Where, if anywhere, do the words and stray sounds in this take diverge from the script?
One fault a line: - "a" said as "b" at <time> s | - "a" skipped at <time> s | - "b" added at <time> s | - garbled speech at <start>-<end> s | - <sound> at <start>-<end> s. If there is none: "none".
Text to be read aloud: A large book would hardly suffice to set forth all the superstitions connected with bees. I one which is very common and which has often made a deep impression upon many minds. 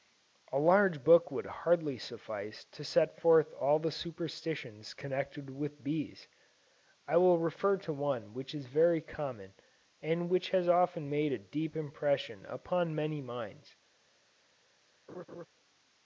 - "will refer to" added at 7.2 s
- laugh at 15.1-15.5 s